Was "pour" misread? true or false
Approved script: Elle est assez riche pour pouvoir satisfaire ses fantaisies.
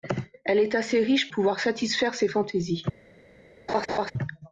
true